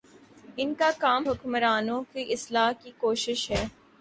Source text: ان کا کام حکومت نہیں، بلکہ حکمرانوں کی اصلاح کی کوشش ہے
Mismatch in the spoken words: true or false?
true